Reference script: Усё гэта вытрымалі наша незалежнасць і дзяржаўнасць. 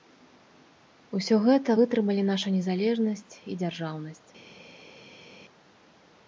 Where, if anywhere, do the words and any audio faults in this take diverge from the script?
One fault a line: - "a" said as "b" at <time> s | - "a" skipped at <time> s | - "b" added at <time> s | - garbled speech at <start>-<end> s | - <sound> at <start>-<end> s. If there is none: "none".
none